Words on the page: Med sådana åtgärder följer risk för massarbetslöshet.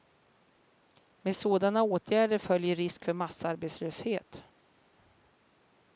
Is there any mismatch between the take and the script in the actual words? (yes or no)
no